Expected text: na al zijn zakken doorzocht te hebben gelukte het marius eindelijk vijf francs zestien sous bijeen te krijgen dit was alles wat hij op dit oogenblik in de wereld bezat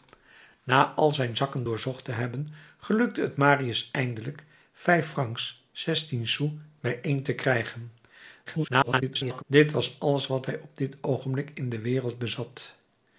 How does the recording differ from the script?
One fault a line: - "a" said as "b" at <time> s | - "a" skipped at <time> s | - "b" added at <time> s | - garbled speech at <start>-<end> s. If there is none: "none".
- garbled speech at 8.5-9.4 s